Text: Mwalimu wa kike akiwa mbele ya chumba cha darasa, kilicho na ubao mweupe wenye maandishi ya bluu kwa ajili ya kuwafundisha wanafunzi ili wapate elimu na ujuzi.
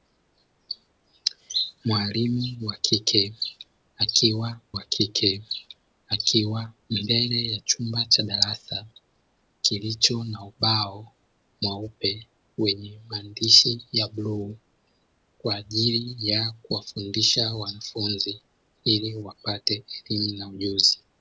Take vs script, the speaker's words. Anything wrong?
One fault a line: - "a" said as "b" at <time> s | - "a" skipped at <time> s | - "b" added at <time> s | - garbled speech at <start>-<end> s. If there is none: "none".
- "wa kike akiwa" added at 4.7 s